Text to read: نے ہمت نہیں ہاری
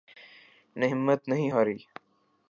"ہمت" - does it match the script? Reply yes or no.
yes